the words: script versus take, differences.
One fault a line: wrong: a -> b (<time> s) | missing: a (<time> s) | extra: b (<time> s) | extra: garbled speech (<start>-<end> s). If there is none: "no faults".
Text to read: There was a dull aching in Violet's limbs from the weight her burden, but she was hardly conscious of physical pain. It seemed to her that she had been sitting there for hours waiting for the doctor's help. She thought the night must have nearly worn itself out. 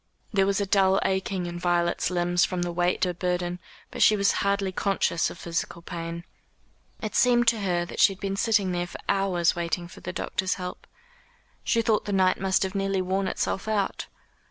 no faults